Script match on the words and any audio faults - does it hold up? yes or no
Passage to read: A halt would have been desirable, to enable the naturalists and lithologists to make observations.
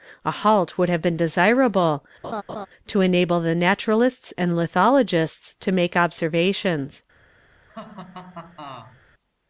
no